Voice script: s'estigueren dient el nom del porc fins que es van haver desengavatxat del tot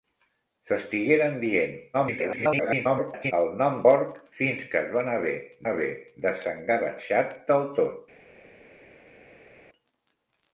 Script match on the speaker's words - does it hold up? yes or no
no